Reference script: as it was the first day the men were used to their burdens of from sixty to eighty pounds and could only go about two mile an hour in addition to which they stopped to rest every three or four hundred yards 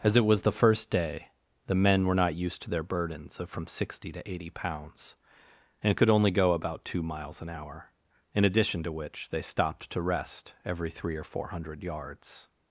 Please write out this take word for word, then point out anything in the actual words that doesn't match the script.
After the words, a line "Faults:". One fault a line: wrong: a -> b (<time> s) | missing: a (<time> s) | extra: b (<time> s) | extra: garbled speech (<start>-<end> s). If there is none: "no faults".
as it was the first day the men were not used to their burdens of from sixty to eighty pounds and could only go about two miles an hour in addition to which they stopped to rest every three or four hundred yards
Faults:
extra: not (2.2 s)
wrong: mile -> miles (7.0 s)